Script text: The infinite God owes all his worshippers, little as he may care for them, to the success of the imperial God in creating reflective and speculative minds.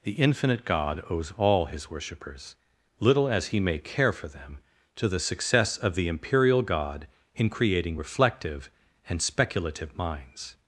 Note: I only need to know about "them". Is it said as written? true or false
true